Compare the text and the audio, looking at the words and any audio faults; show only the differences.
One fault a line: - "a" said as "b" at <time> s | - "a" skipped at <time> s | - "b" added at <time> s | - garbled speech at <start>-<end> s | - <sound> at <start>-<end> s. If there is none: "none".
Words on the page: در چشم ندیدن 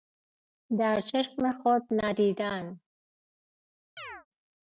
- "خود" added at 1.5 s
- chirp at 4.0-4.3 s